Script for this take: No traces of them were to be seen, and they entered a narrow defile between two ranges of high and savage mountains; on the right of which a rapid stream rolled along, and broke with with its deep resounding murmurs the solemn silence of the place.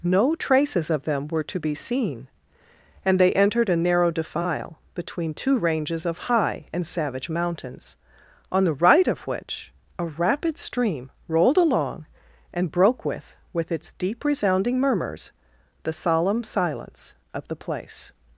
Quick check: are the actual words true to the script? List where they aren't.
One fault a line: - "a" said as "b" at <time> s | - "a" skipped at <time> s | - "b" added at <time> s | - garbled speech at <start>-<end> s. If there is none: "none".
none